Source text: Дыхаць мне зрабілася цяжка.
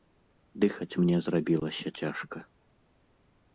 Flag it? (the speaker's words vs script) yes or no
no